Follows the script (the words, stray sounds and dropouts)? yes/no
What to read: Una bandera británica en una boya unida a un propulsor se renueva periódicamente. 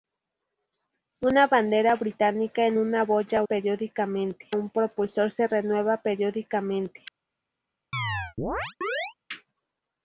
no